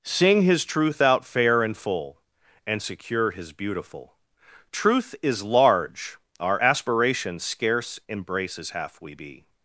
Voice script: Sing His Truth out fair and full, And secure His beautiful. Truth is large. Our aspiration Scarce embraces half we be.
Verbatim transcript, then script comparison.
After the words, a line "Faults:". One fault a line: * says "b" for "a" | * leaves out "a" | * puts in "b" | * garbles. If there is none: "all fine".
Sing His Truth out fair and full, And secure His beautiful. Truth is large. Our aspiration Scarce embraces half we be.
Faults:
all fine